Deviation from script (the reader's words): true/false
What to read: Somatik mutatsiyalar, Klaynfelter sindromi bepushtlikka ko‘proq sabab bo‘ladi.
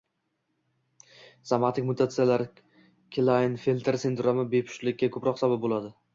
false